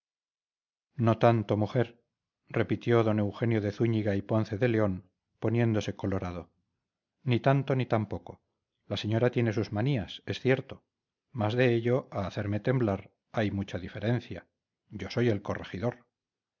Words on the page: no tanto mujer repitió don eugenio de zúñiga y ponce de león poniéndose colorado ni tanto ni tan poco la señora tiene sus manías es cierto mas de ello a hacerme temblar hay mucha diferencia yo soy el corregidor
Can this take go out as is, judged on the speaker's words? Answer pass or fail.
pass